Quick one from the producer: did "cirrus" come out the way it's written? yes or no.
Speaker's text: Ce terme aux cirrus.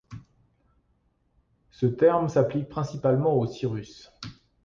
yes